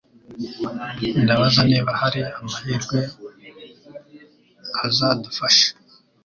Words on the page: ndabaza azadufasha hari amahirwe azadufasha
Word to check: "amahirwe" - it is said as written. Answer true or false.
true